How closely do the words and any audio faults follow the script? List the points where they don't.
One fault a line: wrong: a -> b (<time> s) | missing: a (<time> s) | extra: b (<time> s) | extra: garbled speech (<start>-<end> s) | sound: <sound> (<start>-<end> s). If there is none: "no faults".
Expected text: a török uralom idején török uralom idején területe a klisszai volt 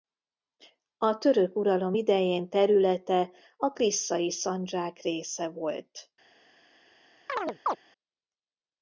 missing: török uralom idején (2.5 s)
extra: szandzsák része (4.3 s)
sound: chirp (7.3-7.8 s)